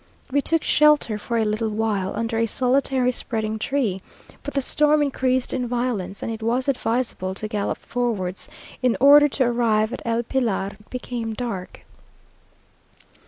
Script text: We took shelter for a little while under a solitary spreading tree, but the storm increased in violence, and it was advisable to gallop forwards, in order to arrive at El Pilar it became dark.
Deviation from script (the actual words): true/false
false